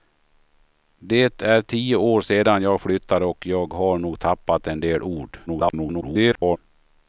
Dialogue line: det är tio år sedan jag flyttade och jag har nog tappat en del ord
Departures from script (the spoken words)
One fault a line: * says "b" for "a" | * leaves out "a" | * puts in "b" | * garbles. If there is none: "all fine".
* garbles